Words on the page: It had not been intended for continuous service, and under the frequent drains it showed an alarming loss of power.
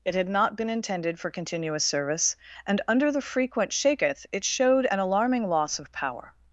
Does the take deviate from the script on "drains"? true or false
true